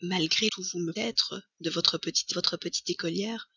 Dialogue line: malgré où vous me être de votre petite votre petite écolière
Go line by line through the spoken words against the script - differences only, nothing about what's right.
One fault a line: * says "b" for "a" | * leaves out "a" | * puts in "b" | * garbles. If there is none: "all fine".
all fine